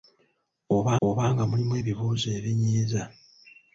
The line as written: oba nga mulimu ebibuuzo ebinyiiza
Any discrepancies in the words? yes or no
yes